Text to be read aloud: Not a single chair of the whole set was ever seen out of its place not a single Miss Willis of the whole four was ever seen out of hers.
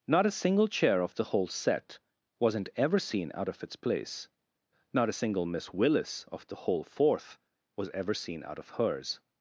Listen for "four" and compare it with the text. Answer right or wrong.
wrong